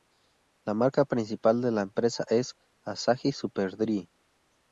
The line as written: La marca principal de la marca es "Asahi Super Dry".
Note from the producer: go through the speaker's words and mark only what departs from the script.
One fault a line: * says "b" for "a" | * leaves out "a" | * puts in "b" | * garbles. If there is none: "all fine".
* says "empresa" for "marca"